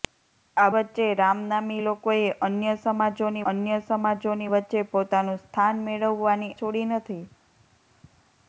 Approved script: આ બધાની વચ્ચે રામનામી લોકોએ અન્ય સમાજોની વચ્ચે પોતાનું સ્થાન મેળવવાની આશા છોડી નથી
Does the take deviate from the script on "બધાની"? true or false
true